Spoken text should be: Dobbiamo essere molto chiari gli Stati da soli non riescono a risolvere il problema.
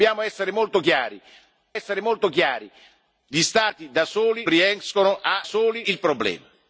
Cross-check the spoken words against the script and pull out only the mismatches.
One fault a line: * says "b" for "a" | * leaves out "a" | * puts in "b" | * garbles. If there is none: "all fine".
* puts in "essere molto chiari"
* leaves out "non"
* says "soli" for "risolvere"